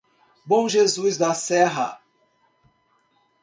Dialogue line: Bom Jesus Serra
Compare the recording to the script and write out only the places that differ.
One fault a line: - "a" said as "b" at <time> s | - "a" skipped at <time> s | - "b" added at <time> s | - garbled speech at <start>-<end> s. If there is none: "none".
- "da" added at 1.2 s